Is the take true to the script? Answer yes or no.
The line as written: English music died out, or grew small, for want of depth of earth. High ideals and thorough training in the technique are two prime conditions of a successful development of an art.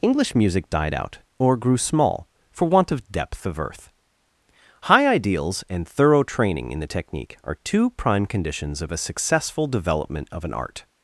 yes